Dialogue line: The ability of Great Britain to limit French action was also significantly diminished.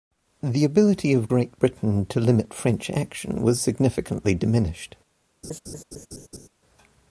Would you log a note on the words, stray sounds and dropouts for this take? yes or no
yes